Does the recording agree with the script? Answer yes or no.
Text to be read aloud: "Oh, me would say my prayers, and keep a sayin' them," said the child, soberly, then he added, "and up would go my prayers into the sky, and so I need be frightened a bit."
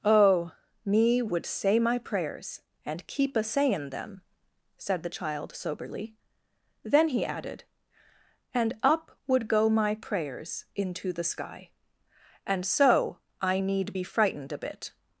yes